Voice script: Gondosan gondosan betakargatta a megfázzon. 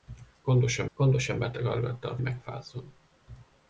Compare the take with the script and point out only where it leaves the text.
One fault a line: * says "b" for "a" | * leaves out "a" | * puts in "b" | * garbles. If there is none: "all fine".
all fine